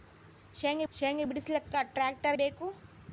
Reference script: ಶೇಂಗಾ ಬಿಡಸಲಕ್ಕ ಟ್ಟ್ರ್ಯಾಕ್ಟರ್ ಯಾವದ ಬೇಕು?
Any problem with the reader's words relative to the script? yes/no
yes